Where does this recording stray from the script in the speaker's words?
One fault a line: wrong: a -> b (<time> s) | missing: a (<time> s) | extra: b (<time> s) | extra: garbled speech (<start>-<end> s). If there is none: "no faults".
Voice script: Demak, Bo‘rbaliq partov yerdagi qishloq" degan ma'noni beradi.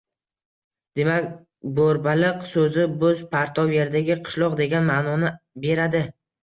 extra: so‘zi bo‘z (2.5 s)